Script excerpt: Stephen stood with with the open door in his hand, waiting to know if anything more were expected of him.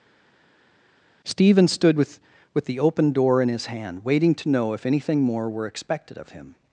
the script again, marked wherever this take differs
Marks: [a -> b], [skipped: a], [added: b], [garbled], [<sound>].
Stephen stood with with the open door in his hand, waiting to know if anything more were expected of him.